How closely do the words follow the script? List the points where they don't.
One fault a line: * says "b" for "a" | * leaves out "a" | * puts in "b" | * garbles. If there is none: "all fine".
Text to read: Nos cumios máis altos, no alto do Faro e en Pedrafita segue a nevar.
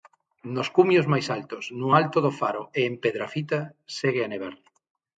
all fine